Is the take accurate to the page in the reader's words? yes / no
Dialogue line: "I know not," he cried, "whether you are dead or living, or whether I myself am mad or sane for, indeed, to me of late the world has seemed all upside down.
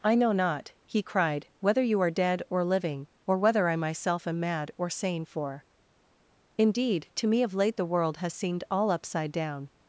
yes